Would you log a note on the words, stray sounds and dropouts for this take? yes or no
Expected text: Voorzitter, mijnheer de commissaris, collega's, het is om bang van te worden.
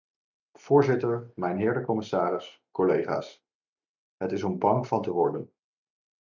no